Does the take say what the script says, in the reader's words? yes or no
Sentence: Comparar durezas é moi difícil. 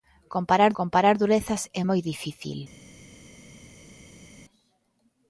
no